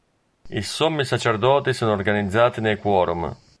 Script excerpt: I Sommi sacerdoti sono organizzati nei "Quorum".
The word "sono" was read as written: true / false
true